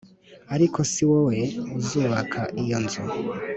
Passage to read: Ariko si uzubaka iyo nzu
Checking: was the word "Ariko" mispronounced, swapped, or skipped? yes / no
no